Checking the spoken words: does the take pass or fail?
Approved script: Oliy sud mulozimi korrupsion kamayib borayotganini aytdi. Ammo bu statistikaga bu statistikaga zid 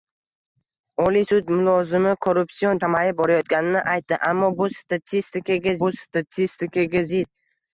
pass